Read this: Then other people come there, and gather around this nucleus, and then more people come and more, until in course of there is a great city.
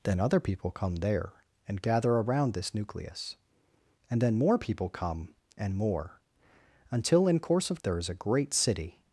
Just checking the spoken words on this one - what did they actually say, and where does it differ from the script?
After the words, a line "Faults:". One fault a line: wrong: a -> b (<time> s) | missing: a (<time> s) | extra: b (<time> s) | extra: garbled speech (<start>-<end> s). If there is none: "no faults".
Then other people come there, and gather around this nucleus, and then more people come and more, until in course of there is a great city.
Faults:
no faults